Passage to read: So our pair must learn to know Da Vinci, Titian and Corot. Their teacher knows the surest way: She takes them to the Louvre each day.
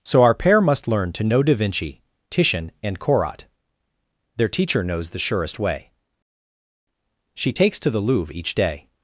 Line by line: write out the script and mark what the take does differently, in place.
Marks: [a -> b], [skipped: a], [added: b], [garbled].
So our pair must learn to know Da Vinci, Titian and Corot. Their teacher knows the surest way: She takes [skipped: them] to the Louvre each day.